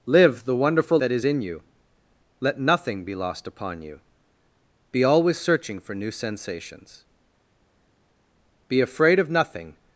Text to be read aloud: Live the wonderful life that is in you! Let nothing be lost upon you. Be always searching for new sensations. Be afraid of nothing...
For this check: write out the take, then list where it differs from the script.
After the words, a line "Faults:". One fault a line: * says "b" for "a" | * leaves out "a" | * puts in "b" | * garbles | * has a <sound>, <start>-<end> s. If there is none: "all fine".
Live the wonderful that is in you! Let nothing be lost upon you. Be always searching for new sensations. Be afraid of nothing...
Faults:
* leaves out "life"